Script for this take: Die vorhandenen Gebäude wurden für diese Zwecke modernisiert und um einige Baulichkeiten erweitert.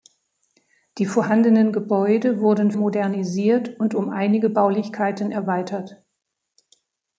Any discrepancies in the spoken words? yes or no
yes